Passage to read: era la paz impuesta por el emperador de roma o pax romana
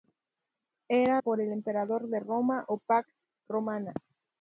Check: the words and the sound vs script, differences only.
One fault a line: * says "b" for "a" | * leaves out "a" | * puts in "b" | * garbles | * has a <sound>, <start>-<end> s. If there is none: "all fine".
* leaves out "la paz impuesta"